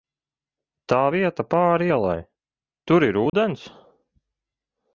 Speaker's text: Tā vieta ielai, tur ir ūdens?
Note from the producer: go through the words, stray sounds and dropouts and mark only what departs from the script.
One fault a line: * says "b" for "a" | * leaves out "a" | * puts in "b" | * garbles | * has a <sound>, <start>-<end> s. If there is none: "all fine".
* puts in "pāri"
* has a dropout, 3.3-3.3 s